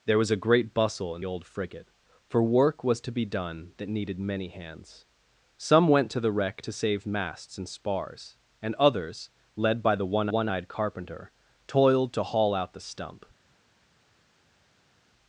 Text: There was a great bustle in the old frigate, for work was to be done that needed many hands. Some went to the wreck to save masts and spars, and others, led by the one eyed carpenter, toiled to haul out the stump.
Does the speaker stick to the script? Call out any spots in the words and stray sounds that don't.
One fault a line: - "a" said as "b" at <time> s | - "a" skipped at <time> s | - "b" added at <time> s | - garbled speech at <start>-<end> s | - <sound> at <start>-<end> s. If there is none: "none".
- "the" skipped at 1.2 s
- "one" added at 10.3 s